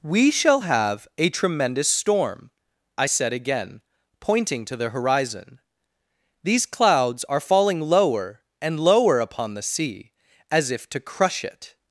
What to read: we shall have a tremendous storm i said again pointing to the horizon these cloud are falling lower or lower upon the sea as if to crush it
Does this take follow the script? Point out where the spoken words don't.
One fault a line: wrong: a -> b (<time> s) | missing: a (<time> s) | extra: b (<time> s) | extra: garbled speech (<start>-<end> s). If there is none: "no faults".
wrong: cloud -> clouds (6.7 s)
wrong: or -> and (8.6 s)